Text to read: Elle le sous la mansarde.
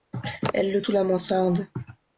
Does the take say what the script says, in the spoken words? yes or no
yes